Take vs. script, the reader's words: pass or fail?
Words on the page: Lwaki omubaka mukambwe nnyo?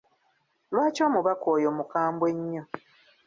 fail